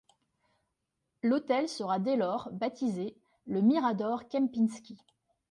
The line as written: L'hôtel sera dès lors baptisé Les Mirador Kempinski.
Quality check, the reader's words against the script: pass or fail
fail